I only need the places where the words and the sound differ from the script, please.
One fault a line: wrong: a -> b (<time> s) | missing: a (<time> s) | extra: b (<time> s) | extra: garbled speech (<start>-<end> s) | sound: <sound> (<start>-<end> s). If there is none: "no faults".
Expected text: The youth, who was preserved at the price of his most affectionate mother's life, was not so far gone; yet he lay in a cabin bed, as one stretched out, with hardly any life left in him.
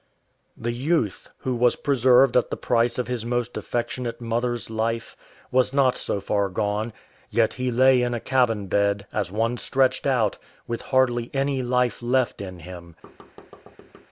sound: thud (13.0-14.1 s)